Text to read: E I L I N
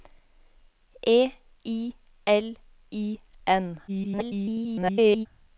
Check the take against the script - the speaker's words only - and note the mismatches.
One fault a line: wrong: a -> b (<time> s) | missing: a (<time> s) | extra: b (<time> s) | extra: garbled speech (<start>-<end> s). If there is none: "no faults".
extra: garbled speech (3.9-5.3 s)